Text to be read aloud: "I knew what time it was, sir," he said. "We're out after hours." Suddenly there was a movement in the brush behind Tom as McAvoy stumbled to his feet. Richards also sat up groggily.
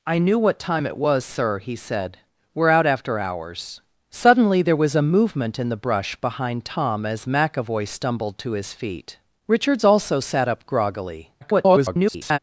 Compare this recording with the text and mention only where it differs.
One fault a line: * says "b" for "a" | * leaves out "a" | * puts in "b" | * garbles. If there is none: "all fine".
* garbles